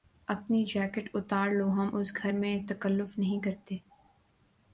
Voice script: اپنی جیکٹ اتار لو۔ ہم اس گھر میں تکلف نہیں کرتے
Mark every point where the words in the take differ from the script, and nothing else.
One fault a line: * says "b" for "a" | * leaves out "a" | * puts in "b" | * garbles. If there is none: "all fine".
all fine